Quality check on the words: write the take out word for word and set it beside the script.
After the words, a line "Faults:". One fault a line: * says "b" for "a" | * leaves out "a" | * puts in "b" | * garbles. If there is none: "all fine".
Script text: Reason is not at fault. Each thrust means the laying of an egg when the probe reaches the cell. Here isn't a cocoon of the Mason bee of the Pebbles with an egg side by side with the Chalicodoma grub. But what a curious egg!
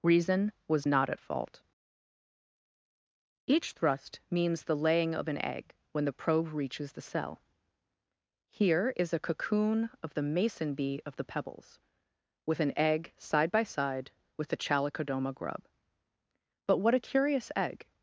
Reason was not at fault. Each thrust means the laying of an egg when the probe reaches the cell. Here is a cocoon of the Mason bee of the Pebbles with an egg side by side with the Chalicodoma grub. But what a curious egg!
Faults:
* says "was" for "is"
* says "is" for "isn't"